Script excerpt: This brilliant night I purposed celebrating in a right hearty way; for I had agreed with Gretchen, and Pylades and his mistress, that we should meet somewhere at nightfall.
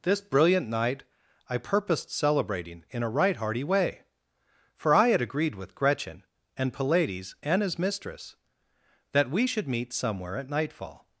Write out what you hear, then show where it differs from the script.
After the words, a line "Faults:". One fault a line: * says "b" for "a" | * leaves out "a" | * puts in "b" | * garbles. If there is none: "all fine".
This brilliant night I purposed celebrating in a right hearty way; for I had agreed with Gretchen, and Pylades and his mistress, that we should meet somewhere at nightfall.
Faults:
all fine